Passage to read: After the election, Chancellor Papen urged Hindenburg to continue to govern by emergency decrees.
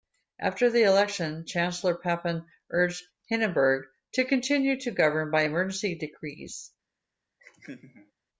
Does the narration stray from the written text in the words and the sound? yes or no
yes